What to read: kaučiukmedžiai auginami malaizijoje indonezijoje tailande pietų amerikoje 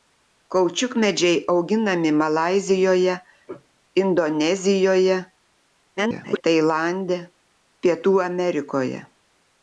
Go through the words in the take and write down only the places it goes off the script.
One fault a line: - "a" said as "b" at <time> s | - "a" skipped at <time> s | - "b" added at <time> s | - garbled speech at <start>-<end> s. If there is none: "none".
- garbled speech at 6.0-6.4 s